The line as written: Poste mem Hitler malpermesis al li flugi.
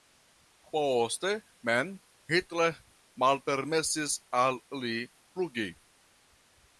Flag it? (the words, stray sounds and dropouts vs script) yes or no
no